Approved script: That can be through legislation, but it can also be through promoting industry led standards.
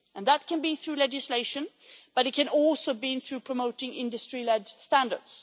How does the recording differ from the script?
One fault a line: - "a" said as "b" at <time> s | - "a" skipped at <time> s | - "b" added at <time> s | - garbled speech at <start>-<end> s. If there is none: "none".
none